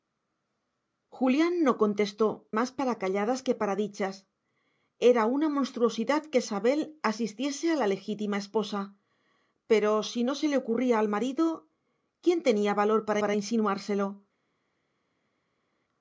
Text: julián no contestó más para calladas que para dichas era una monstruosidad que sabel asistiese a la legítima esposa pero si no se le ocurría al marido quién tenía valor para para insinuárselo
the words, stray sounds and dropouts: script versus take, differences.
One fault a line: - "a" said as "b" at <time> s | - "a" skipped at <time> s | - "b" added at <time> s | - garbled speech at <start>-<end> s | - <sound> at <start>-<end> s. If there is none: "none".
none